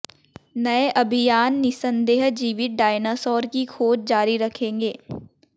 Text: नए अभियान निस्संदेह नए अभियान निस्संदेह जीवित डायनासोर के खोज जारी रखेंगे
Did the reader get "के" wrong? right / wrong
wrong